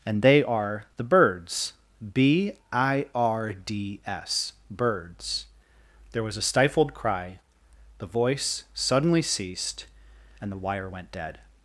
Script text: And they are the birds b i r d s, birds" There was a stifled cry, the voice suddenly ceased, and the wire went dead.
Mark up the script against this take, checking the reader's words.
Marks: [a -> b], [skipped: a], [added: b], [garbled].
And they are the birds b i r d s, birds" There was a stifled cry, the voice suddenly ceased, and the wire went dead.